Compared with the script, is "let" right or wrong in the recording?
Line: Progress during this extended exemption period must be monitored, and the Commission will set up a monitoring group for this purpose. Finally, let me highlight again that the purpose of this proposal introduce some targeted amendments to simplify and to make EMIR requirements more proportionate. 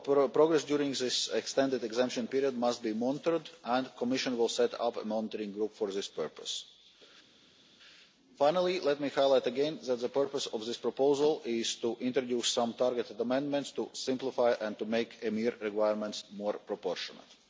right